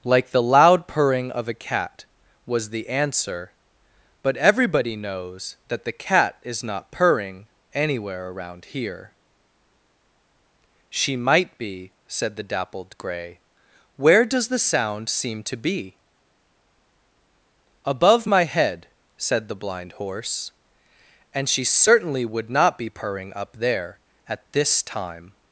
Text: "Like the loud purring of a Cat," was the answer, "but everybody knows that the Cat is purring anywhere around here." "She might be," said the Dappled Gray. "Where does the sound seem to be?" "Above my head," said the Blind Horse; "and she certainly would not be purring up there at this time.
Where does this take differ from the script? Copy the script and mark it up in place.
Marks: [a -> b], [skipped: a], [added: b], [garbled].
"Like the loud purring of a Cat," was the answer, "but everybody knows that the Cat is [added: not] purring anywhere around here." "She might be," said the Dappled Gray. "Where does the sound seem to be?" "Above my head," said the Blind Horse; "and she certainly would not be purring up there at this time.